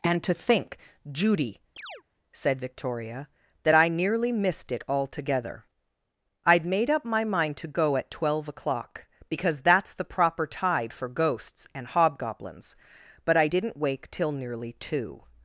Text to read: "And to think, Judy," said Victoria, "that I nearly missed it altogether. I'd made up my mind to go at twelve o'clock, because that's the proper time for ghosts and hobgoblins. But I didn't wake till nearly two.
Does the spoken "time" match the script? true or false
false